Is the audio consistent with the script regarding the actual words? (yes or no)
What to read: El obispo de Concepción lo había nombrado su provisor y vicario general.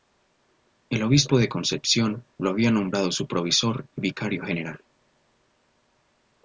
yes